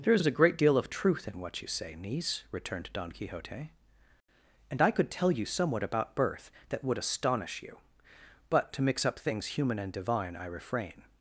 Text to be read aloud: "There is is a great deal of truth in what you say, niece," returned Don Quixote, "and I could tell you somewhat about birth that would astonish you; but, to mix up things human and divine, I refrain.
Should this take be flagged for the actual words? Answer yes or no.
no